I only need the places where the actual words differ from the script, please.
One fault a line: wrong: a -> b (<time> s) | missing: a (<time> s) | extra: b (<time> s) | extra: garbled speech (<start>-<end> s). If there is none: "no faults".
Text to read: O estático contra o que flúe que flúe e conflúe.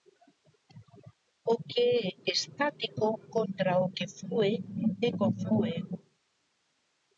extra: que é (1.7 s)
missing: que flúe (4.5 s)